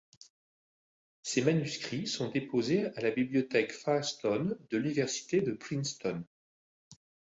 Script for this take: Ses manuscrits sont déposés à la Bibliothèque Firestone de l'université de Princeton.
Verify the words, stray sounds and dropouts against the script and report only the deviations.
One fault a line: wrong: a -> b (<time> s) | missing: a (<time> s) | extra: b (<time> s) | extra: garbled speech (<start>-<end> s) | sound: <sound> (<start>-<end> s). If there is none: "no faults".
no faults